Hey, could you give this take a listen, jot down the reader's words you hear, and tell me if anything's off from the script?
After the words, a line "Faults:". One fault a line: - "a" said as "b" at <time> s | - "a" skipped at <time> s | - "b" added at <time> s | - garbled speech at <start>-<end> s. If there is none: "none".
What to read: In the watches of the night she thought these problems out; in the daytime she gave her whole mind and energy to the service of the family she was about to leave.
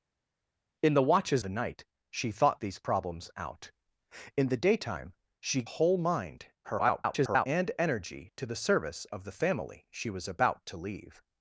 In the watches the night she thought these problems out; in the daytime she whole mind [garbled] and energy to the service of the family she was about to leave.
Faults:
- "of" skipped at 1.4 s
- "gave her" skipped at 5.6 s
- garbled speech at 6.6-7.5 s